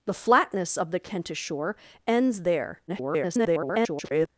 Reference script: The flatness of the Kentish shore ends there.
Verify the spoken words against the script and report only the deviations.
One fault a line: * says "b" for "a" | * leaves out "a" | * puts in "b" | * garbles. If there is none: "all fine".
* garbles